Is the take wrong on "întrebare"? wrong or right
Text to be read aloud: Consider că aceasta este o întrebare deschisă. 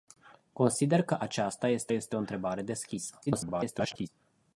right